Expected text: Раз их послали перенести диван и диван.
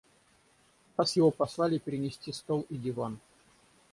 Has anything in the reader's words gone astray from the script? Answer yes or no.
yes